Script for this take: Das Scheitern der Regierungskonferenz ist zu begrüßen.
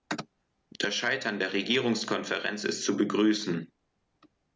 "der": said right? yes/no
yes